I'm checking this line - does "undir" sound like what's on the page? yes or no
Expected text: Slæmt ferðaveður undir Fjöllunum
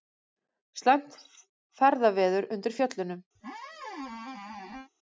yes